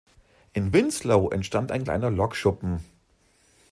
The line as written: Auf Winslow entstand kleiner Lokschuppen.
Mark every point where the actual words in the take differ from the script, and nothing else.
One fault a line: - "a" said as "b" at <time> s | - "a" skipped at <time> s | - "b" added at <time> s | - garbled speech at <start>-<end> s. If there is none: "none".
- "Auf" said as "In" at 0.5 s
- "ein" added at 1.7 s